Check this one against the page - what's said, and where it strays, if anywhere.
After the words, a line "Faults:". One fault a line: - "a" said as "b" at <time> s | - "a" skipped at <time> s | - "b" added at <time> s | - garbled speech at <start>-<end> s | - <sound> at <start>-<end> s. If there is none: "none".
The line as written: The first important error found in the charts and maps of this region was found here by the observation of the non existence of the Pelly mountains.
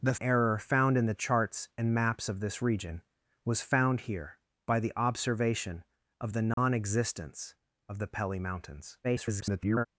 The error found in the charts and maps of this region was found here by the observation of the non existence of the Pelly mountains. [garbled]
Faults:
- "first important" skipped at 0.1 s
- dropout at 6.5-6.6 s
- garbled speech at 9.0-9.9 s